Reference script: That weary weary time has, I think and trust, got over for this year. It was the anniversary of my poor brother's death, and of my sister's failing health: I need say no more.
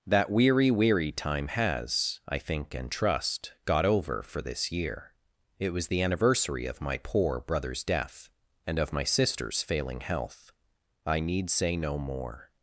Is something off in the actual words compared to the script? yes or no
no